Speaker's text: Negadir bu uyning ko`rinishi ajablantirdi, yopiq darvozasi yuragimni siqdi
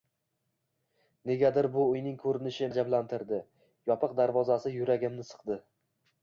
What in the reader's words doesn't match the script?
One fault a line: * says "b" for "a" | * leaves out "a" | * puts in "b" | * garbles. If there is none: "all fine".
all fine